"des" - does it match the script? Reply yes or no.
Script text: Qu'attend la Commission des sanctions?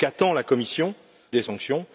yes